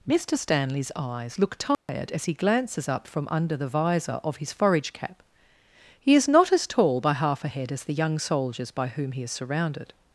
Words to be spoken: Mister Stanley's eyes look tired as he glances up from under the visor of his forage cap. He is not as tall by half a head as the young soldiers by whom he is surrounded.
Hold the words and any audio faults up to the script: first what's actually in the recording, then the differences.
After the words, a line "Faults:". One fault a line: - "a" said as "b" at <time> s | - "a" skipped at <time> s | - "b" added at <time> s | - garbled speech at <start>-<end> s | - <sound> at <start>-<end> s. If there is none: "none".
Mister Stanley's eyes look tired as he glances up from under the visor of his forage cap. He is not as tall by half a head as the young soldiers by whom he is surrounded.
Faults:
- dropout at 1.7-1.9 s